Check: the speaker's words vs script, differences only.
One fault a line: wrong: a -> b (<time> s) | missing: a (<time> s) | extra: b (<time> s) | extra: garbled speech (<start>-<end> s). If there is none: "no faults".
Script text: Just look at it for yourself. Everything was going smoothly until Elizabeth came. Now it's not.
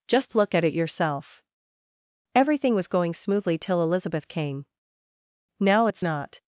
missing: for (0.7 s)
wrong: until -> till (3.6 s)